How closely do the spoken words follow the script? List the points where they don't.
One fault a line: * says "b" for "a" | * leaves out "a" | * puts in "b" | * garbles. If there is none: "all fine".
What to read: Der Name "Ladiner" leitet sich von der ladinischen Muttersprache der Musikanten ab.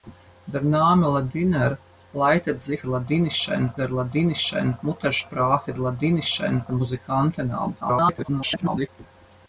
* says "ladinischen" for "von"
* says "ladinischen" for "der"
* garbles